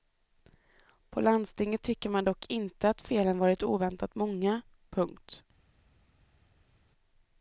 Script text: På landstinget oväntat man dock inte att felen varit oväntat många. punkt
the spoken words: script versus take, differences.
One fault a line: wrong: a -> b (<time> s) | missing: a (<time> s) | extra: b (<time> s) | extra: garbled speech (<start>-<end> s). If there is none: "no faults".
wrong: oväntat -> tycker (1.8 s)